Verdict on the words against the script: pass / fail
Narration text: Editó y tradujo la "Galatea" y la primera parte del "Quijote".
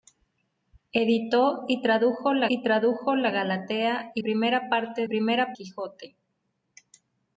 fail